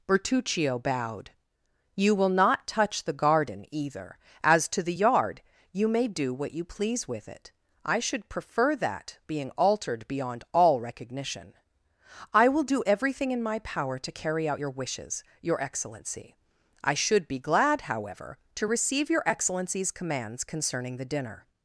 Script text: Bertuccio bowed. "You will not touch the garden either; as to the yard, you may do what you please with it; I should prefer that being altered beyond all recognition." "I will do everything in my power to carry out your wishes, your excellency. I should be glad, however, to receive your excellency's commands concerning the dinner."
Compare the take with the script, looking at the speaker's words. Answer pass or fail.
pass